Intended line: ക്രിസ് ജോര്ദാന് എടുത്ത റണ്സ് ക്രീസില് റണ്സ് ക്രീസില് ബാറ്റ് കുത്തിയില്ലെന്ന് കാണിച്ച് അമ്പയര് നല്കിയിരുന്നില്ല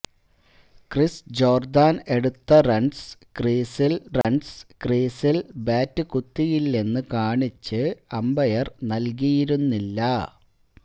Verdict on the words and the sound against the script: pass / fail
fail